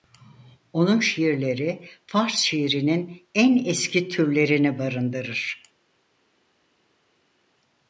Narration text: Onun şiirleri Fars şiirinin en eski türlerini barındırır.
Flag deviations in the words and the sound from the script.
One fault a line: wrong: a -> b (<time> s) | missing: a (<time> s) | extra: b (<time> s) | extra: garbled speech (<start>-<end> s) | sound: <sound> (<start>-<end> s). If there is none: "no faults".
no faults